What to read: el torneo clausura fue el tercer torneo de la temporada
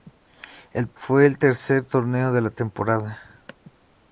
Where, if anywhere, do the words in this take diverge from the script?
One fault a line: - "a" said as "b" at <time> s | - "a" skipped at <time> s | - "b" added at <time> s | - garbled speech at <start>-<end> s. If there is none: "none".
- "torneo clausura" skipped at 0.9 s